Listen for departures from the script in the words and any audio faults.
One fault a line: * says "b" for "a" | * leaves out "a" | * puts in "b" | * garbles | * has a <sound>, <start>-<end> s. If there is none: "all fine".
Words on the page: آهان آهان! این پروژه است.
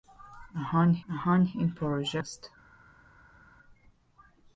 all fine